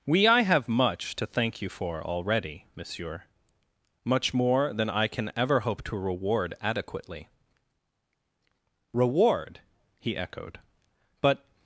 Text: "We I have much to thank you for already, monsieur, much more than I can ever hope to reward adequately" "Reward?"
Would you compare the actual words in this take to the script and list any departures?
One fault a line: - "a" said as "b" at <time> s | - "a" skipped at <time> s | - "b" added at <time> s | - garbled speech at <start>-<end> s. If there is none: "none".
- "he echoed But" added at 10.0 s